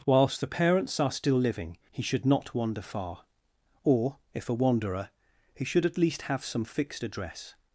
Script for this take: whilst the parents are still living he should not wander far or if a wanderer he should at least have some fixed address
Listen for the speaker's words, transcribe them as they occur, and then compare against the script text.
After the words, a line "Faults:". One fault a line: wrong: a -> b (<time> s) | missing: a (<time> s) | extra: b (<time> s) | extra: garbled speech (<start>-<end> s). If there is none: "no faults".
whilst the parents are still living he should not wander far or if a wanderer he should at least have some fixed address
Faults:
no faults